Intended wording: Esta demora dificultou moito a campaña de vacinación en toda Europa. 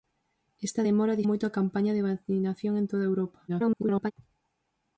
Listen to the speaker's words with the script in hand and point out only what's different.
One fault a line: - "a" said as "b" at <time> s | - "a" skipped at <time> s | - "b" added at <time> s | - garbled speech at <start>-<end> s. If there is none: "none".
- "dificultou" skipped at 1.2 s
- garbled speech at 3.5-4.1 s